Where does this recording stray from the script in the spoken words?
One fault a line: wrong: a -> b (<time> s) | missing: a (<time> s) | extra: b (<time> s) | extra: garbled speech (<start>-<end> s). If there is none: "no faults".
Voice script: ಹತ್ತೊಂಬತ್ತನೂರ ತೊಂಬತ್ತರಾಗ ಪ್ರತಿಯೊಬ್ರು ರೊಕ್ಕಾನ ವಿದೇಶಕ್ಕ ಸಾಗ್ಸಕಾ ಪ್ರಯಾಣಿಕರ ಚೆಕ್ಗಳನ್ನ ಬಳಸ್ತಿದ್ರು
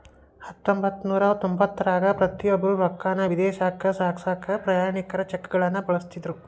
no faults